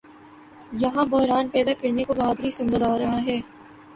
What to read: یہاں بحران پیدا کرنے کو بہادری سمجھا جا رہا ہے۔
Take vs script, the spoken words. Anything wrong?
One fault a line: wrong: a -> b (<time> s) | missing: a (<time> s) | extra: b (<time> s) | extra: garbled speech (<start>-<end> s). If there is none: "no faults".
no faults